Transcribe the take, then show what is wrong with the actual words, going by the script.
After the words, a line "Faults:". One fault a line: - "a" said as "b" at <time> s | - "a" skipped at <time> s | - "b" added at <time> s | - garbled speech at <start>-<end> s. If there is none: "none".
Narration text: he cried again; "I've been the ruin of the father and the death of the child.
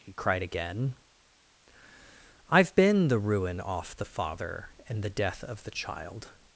he cried again; "I've been the ruin off the father and the death of the child.
Faults:
- "of" said as "off" at 3.6 s